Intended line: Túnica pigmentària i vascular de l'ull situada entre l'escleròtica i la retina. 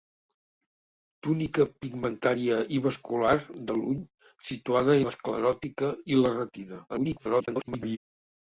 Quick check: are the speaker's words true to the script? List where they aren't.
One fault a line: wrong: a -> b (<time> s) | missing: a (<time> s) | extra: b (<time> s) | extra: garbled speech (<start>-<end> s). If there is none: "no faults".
missing: entre (5.0 s)
extra: garbled speech (6.9-8.0 s)